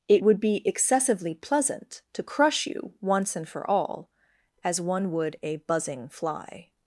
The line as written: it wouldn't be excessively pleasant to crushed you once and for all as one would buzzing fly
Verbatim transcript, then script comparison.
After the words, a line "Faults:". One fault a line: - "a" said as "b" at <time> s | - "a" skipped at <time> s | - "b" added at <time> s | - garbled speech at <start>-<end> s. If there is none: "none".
it would be excessively pleasant to crush you once and for all as one would a buzzing fly
Faults:
- "wouldn't" said as "would" at 0.2 s
- "crushed" said as "crush" at 2.2 s
- "a" added at 5.4 s